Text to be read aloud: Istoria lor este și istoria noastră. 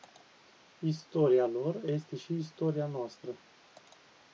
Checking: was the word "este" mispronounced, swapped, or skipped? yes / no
no